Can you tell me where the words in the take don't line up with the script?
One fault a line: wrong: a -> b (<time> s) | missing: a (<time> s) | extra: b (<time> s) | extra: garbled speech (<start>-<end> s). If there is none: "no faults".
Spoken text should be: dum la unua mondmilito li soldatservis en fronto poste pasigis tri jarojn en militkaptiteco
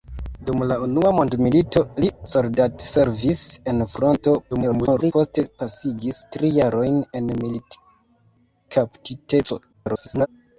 extra: garbled speech (4.5-5.1 s)
extra: garbled speech (9.7-10.3 s)